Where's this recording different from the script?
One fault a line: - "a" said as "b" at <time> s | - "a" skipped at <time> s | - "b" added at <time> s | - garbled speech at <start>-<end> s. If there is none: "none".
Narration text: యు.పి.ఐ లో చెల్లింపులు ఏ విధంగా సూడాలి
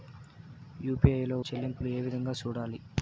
none